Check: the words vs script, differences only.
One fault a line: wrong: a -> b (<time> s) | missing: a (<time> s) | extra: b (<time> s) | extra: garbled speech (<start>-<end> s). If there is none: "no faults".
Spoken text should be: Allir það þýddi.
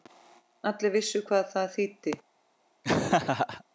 extra: vissu hvað (1.0 s)